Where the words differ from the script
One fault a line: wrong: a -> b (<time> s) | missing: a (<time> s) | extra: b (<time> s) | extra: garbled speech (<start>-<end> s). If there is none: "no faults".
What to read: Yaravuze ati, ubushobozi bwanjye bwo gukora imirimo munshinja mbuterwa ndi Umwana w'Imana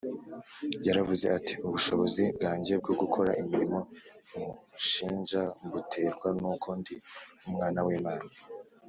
extra: n'uko (6.4 s)